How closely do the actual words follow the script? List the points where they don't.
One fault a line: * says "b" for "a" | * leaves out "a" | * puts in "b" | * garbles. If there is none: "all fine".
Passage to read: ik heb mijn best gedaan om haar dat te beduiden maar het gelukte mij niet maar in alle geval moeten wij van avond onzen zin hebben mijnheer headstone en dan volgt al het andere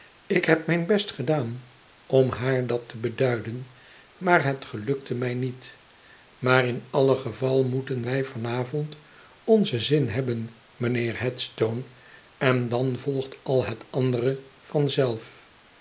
all fine